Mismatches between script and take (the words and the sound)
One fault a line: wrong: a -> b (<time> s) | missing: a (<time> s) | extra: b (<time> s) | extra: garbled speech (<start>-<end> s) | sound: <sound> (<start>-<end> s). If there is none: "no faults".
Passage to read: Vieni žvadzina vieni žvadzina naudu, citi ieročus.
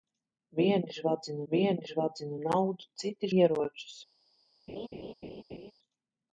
sound: laugh (4.7-5.7 s)